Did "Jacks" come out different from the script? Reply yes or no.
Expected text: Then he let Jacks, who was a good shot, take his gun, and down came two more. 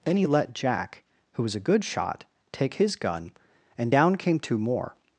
yes